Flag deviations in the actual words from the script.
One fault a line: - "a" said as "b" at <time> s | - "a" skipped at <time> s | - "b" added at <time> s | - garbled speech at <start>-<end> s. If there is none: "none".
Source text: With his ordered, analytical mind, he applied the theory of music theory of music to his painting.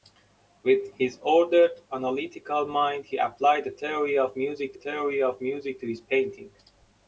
none